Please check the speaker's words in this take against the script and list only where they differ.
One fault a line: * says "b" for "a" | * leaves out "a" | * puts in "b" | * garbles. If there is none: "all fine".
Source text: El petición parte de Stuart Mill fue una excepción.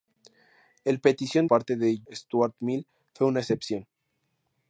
all fine